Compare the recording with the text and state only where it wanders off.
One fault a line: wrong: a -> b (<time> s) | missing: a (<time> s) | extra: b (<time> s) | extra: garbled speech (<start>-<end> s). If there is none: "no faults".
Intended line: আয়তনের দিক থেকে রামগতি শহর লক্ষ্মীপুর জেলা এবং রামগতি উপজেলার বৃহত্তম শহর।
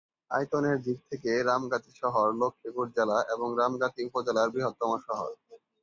no faults